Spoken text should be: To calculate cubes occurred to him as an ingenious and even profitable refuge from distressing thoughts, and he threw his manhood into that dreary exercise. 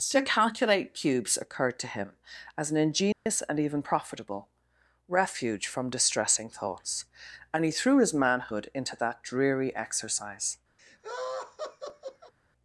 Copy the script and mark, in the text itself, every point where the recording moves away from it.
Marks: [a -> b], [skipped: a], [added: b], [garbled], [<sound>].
To calculate cubes occurred to him as an ingenious [dropout] and even profitable refuge from distressing thoughts, and he threw his manhood into that dreary exercise. [laugh]